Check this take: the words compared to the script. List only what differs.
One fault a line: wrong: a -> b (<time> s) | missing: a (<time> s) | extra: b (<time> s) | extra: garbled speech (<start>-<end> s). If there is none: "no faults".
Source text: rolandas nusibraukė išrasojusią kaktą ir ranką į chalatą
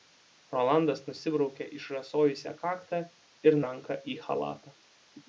no faults